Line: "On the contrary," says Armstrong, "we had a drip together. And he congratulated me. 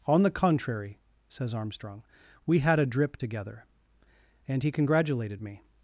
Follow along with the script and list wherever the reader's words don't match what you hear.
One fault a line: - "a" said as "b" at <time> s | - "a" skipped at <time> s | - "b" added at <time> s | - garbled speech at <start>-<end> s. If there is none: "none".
none